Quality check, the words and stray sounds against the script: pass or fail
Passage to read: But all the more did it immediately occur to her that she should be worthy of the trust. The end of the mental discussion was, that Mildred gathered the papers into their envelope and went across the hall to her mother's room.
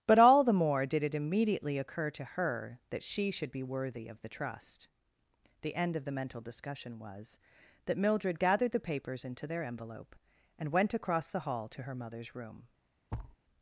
fail